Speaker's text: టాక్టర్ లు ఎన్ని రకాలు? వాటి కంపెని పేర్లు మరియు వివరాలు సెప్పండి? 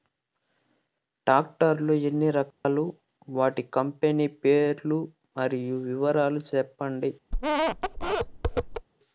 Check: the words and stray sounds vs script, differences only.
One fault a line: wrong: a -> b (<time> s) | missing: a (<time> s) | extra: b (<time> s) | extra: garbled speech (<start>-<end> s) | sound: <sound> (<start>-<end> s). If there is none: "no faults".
sound: dropout (2.5-2.6 s)
sound: squeak (7.3-8.9 s)